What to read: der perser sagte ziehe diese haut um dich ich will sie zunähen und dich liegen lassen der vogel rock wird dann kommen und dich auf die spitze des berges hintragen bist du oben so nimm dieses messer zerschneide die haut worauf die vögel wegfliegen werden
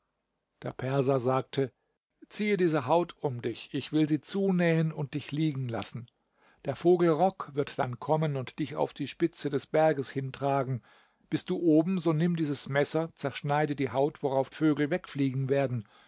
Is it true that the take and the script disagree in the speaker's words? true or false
true